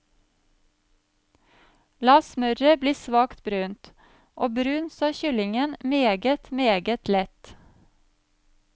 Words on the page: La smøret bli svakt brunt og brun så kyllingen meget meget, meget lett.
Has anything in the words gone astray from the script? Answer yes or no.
yes